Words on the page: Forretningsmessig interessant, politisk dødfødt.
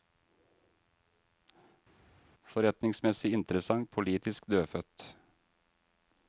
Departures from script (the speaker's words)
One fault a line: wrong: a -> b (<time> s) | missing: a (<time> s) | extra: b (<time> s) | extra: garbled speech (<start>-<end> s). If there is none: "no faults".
no faults